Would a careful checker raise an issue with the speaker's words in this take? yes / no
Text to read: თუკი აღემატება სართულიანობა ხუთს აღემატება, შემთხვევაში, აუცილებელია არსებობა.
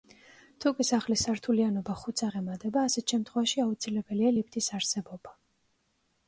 yes